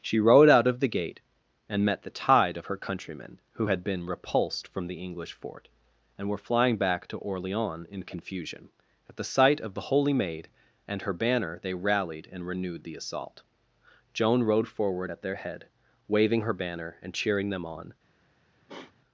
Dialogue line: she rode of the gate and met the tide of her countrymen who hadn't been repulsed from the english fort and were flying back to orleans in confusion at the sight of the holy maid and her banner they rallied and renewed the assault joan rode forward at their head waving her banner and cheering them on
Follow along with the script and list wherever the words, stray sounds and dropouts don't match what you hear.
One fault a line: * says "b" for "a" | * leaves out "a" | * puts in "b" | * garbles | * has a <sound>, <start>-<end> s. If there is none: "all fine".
* puts in "out"
* says "had" for "hadn't"
* has a sniff, 18.7-18.9 s